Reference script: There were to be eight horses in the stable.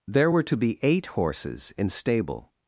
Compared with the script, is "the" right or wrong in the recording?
wrong